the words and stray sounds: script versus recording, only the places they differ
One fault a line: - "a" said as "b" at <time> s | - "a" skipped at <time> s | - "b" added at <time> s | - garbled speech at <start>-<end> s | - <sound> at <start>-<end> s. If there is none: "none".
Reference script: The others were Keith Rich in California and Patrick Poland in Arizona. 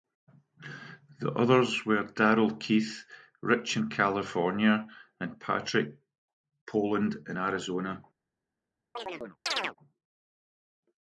- "Darrell" added at 2.0 s
- chirp at 9.0-9.8 s